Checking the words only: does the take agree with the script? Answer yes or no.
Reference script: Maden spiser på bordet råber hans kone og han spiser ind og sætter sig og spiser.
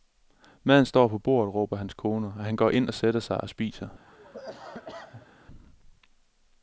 no